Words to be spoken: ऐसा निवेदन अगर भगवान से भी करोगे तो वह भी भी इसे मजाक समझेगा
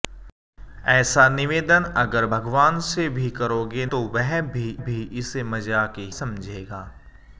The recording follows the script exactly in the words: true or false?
true